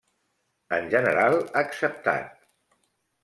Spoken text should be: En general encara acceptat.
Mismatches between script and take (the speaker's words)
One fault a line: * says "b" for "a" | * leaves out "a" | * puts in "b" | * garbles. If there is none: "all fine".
* leaves out "encara"